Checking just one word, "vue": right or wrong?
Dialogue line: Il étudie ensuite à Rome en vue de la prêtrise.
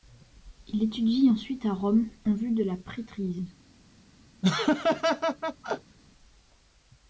right